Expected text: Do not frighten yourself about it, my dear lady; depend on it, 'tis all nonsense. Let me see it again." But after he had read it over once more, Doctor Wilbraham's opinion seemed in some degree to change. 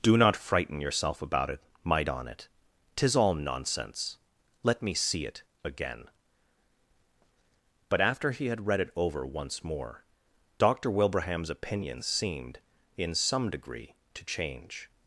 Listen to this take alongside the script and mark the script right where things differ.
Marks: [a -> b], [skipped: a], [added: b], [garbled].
Do not frighten yourself about it, my [skipped: dear lady; depend] on it, 'tis all nonsense. Let me see it again." But after he had read it over once more, Doctor Wilbraham's opinion seemed in some degree to change.